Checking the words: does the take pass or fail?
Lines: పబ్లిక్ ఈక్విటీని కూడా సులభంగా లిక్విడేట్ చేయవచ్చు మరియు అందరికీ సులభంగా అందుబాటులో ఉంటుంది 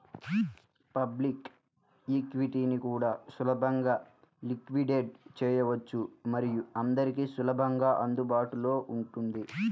pass